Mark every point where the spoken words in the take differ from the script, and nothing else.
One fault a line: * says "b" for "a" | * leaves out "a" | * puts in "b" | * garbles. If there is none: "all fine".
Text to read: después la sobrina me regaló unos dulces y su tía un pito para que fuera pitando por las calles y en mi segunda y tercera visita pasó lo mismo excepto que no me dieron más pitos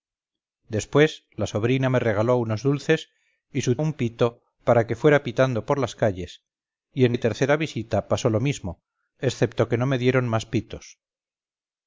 * leaves out "tía"
* leaves out "mi segunda"